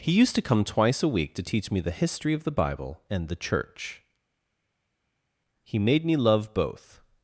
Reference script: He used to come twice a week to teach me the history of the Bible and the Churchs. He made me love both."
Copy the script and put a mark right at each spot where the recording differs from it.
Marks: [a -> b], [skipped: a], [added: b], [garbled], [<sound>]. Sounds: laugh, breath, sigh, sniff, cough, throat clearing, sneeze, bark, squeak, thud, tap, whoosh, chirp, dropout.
He used to come twice a week to teach me the history of the Bible and the [Churchs. -> Church] He made me love both."